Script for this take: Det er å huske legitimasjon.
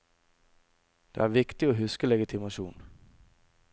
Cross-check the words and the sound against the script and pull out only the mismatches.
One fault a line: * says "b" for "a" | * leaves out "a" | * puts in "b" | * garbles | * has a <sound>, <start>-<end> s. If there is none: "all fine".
* puts in "viktig"